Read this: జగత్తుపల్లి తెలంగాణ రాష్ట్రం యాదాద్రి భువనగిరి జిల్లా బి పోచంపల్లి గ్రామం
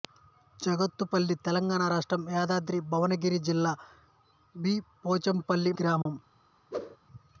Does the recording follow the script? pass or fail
pass